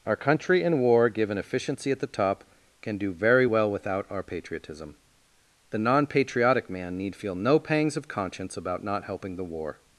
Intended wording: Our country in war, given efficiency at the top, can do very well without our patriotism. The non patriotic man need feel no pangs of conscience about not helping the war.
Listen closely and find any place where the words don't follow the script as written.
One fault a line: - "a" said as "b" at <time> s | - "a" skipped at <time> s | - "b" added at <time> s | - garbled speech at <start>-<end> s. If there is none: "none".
none